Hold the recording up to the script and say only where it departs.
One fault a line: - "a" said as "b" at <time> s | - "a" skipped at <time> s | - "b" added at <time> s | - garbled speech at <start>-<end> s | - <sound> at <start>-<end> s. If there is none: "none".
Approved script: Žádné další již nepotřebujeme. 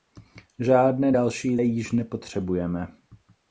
none